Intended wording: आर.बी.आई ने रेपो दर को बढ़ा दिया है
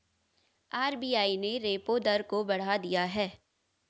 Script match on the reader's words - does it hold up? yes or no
yes